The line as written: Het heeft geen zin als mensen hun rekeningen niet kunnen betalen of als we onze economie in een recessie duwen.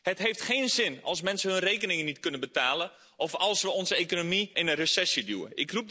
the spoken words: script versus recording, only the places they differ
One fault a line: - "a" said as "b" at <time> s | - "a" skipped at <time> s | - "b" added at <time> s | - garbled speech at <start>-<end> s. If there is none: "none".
none